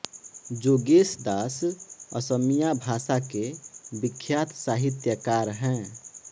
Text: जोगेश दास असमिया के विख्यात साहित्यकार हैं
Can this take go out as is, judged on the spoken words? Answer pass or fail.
fail